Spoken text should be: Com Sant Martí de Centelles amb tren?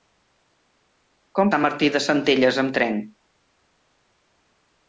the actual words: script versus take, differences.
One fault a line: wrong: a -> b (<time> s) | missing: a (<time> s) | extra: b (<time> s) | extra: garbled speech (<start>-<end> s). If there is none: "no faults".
no faults